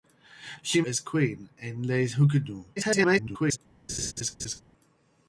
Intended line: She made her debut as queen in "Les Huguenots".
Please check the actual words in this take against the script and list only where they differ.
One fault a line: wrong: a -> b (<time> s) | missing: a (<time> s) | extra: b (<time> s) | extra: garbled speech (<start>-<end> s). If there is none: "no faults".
missing: made her debut (0.8 s)
extra: garbled speech (2.8-3.6 s)